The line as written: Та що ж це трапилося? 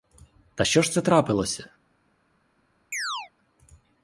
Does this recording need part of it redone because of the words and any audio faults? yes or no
yes